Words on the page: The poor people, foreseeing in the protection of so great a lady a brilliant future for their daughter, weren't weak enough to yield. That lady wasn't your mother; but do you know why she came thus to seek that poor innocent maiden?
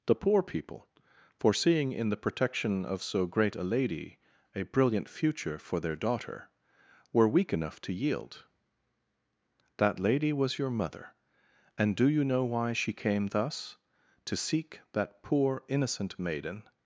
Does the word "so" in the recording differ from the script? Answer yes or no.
no